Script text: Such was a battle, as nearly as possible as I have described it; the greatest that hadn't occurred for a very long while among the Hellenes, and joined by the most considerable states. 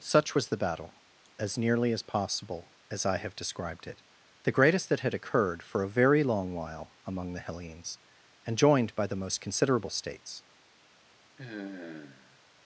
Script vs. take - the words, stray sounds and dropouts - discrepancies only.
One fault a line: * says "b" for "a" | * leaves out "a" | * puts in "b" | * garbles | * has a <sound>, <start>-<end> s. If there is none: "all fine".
* says "the" for "a"
* says "had" for "hadn't"
* has a sigh, 11.4-12.4 s